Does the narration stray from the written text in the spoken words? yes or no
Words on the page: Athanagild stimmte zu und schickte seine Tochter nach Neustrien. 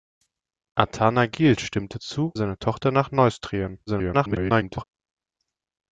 yes